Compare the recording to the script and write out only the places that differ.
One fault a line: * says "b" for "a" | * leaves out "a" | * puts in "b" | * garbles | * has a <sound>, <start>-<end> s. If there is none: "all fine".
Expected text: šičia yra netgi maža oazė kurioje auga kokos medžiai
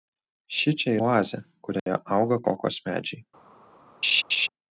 * leaves out "yra netgi maža"
* has a dropout, 1.8-1.9 s
* has a laugh, 4.0-4.5 s